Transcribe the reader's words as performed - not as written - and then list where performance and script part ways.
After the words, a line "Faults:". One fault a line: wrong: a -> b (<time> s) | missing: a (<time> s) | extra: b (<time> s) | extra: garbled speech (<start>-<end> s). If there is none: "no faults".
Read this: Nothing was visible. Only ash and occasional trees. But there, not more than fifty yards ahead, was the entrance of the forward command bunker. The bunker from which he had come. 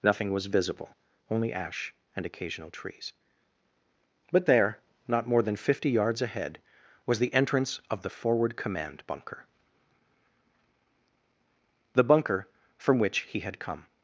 Nothing was visible. Only ash and occasional trees. But there, not more than fifty yards ahead, was the entrance of the forward command bunker. The bunker from which he had come.
Faults:
no faults